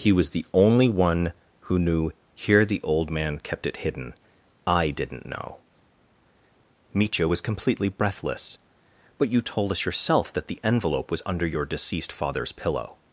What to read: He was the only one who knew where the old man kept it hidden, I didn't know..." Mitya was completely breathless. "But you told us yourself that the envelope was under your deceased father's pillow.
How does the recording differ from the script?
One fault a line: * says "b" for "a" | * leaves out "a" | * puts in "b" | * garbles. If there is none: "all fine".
* says "here" for "where"